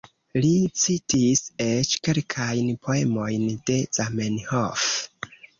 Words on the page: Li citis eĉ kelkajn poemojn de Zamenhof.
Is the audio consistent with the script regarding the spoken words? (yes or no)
yes